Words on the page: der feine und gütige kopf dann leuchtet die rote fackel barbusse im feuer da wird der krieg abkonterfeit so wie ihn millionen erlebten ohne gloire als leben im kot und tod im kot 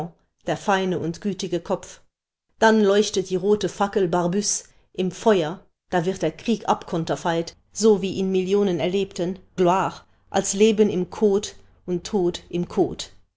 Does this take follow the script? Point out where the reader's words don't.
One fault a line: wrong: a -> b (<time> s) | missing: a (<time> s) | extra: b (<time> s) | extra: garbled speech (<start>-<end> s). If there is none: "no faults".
missing: ohne (9.4 s)